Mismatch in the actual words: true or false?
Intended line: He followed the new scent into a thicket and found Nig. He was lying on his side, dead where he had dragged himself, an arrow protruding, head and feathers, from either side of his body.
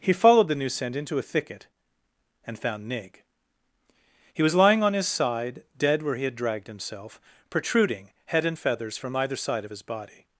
true